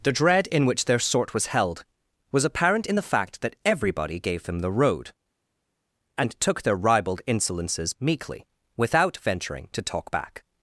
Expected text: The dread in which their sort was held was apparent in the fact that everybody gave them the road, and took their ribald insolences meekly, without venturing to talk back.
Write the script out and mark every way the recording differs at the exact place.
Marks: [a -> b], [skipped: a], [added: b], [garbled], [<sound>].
The dread in which their sort was held was apparent in the fact that everybody gave them the road, and took their ribald insolences meekly, without venturing to talk back.